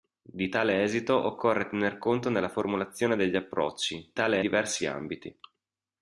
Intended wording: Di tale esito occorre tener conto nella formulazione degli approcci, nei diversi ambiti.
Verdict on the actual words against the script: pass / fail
fail